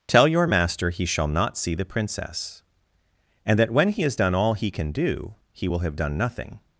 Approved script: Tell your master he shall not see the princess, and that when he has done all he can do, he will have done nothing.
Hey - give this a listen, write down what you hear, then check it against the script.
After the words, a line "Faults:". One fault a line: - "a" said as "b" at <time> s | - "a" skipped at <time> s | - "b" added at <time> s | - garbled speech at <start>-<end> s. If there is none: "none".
Tell your master he shall not see the princess, and that when he has done all he can do, he will have done nothing.
Faults:
none